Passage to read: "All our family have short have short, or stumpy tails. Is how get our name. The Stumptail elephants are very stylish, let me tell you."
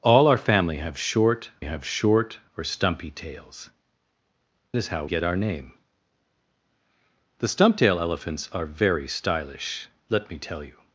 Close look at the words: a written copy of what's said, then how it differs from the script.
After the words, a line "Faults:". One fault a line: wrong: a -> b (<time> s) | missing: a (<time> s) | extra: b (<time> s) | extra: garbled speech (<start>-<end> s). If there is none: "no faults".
"All our family have short have short, or stumpy tails. Is how get our name. The Stumptail elephants are very stylish, let me tell you."
Faults:
no faults